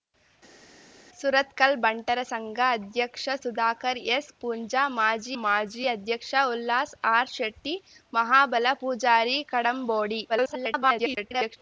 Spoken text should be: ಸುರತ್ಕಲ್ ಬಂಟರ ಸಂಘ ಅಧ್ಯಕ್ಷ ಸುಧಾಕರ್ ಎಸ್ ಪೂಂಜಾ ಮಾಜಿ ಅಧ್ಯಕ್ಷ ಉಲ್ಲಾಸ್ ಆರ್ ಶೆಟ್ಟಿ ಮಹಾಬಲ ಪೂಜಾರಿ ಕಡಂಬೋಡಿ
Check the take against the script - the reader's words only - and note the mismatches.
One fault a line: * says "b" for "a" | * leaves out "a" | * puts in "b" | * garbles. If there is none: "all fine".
* puts in "ಮಾಜಿ"
* garbles